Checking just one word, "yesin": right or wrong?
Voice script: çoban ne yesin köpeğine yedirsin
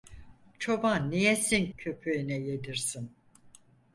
right